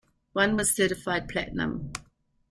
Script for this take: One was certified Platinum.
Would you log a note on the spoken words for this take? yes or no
no